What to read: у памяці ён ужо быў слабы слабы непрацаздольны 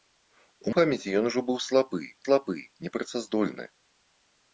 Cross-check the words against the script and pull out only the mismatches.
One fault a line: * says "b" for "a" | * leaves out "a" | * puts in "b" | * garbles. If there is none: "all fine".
all fine